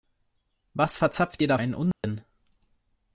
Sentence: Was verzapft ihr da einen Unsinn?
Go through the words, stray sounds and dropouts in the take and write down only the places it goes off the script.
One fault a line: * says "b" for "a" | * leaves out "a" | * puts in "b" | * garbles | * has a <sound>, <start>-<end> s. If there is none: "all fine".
* has a dropout, 1.9-2.0 s